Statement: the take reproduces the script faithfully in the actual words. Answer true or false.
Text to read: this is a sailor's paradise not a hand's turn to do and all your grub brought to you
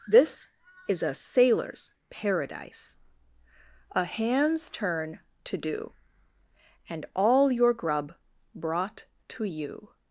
false